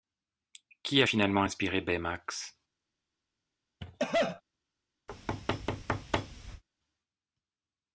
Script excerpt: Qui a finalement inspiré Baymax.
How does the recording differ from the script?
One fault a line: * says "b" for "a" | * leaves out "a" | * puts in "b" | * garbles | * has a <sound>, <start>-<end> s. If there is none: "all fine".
* has a cough, 3.8-4.4 s
* has a thud, 5.1-6.6 s